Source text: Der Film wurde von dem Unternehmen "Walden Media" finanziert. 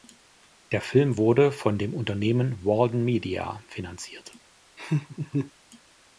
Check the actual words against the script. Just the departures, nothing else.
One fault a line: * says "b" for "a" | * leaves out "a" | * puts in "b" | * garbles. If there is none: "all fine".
all fine